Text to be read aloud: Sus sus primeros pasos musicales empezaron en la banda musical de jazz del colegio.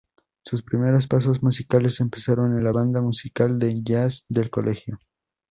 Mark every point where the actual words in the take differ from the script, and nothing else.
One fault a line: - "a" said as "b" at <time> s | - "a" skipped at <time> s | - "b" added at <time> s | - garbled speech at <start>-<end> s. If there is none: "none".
- "sus" skipped at 0.6 s